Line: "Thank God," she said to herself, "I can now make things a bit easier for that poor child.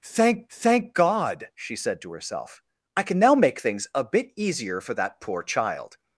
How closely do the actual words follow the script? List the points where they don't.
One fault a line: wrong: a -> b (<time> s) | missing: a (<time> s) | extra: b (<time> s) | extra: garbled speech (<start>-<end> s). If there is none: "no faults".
extra: thank (0.5 s)